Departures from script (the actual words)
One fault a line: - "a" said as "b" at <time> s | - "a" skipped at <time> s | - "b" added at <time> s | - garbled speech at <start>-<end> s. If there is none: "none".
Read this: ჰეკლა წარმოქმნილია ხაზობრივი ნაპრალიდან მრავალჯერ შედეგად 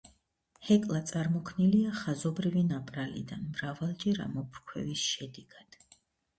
- "ამოფრქვევის" added at 4.3 s